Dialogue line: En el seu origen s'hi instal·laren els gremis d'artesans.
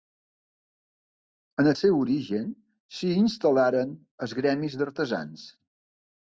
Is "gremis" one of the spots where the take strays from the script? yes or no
no